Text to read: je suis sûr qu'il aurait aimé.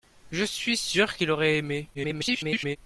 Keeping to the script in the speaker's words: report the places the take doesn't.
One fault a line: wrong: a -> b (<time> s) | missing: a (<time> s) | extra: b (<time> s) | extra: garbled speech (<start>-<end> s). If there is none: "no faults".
extra: garbled speech (1.9-2.8 s)